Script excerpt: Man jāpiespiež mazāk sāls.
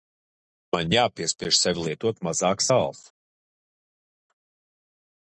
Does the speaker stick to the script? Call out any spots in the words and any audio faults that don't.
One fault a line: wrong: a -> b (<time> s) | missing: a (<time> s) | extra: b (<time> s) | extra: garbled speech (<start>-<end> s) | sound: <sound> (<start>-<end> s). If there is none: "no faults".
extra: sevi lietot (1.6 s)